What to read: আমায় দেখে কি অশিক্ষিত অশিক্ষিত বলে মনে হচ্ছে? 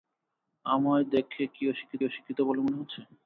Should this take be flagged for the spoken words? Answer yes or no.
no